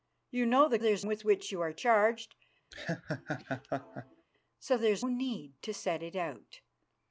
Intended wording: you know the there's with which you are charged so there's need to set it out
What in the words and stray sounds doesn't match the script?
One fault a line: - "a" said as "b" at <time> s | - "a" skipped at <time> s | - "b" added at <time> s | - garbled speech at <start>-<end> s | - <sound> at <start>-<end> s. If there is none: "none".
- laugh at 2.7-4.3 s